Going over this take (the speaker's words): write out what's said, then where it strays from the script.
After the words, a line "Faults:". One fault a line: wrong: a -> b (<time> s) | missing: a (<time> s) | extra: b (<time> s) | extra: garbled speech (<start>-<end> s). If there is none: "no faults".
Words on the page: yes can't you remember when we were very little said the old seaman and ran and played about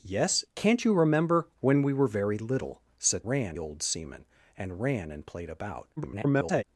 yes can't you remember when we were very little said ran old seaman and ran and played about [garbled]
Faults:
wrong: the -> ran (3.3 s)
extra: garbled speech (6.0-6.6 s)